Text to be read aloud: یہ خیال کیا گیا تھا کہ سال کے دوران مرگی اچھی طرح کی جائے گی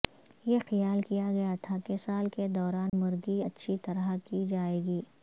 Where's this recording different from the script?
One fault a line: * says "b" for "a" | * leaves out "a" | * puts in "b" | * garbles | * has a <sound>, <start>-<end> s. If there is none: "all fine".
* has a dropout, 2.9-2.9 s